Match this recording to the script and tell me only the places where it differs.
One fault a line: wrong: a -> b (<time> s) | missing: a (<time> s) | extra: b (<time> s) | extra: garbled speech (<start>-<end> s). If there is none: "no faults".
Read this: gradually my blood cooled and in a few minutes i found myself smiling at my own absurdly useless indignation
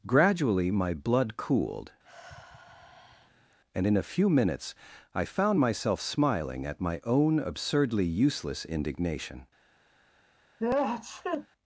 no faults